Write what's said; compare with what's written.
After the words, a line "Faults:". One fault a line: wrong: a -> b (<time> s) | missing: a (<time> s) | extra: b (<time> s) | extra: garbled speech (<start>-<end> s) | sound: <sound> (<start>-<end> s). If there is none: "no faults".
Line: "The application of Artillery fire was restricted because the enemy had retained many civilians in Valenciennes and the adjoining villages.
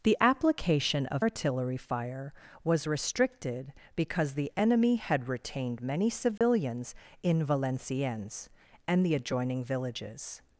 "The application of Artillery fire was restricted because the enemy had retained many civilians in Valenciennes and the adjoining villages.
Faults:
sound: dropout (6.4-6.4 s)